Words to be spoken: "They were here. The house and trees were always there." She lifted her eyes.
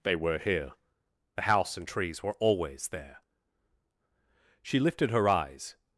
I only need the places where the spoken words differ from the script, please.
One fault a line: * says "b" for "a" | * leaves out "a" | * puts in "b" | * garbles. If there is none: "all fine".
all fine